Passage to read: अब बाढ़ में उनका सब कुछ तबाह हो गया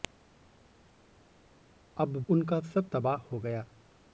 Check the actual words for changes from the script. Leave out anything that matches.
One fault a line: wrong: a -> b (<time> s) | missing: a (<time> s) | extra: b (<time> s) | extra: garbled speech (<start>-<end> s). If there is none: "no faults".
missing: बाढ़ में (2.2 s)
missing: कुछ (2.9 s)